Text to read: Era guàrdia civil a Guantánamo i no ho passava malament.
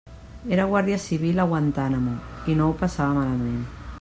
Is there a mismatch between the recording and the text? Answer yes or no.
no